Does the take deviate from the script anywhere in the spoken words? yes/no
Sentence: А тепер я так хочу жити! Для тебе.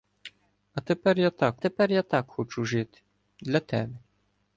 yes